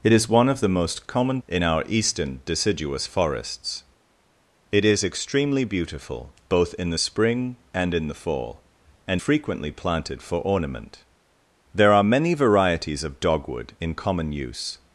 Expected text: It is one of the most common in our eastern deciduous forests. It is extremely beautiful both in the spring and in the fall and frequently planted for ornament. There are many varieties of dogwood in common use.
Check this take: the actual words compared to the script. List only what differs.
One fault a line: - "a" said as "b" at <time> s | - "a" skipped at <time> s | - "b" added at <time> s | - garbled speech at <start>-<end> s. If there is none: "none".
none